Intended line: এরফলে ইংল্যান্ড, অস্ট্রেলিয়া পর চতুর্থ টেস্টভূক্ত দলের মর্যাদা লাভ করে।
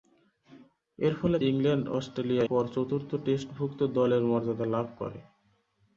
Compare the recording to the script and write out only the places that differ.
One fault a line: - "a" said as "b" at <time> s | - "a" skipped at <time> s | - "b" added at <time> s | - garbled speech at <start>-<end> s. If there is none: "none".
none